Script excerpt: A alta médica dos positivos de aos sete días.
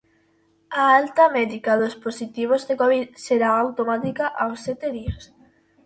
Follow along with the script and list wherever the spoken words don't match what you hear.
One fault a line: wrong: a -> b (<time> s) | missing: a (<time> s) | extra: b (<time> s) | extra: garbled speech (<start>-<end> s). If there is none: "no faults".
extra: covid será automática (2.8 s)